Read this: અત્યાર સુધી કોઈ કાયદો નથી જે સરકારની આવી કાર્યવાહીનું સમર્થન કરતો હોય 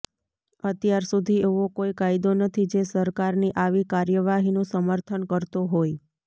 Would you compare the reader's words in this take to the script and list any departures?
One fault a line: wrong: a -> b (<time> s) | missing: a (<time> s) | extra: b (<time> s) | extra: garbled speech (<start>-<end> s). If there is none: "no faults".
extra: એવો (1.5 s)